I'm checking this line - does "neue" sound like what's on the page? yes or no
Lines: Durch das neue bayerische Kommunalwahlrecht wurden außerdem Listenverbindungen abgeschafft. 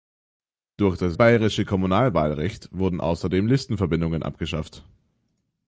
no